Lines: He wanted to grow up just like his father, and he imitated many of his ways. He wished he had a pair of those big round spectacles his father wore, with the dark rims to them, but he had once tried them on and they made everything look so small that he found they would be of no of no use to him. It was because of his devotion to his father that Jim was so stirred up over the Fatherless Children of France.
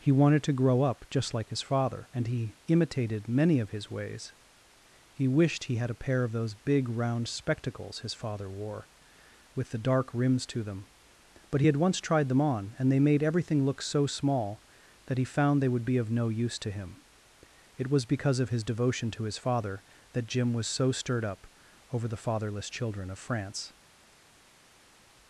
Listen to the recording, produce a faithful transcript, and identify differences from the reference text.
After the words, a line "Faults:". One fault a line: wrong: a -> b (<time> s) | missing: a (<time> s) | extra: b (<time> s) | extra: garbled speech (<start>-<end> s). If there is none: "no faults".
He wanted to grow up just like his father, and he imitated many of his ways. He wished he had a pair of those big round spectacles his father wore, with the dark rims to them, but he had once tried them on and they made everything look so small that he found they would be of no use to him. It was because of his devotion to his father that Jim was so stirred up over the Fatherless Children of France.
Faults:
missing: of no (16.3 s)